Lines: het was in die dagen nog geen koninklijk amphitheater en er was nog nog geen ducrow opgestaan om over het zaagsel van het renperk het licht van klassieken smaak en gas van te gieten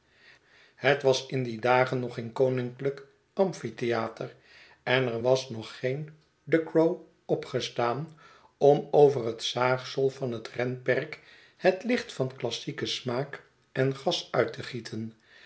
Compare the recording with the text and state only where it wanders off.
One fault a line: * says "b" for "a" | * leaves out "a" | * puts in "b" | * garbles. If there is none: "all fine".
* leaves out "nog"
* says "uit" for "van"